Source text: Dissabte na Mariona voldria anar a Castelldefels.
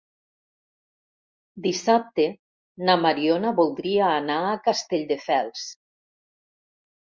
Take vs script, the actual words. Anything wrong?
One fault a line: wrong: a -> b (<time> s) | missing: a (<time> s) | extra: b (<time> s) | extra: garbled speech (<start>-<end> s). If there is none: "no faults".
no faults